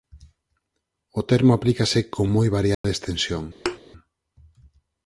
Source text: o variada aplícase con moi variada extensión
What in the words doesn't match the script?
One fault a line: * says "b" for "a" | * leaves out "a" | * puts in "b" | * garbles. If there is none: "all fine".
* says "termo" for "variada"